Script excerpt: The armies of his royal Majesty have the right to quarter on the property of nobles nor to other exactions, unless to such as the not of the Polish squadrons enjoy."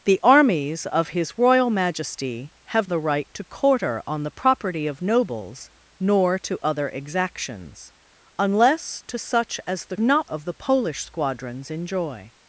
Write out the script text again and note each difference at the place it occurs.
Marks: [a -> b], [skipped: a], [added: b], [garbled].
The armies of his royal Majesty have the right to quarter on the property of nobles nor to other exactions, unless to such as the not of the Polish squadrons enjoy."